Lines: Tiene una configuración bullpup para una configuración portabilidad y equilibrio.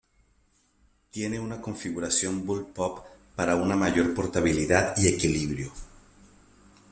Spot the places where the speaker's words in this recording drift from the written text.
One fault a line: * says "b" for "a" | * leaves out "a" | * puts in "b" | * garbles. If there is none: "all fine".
* says "mayor" for "configuración"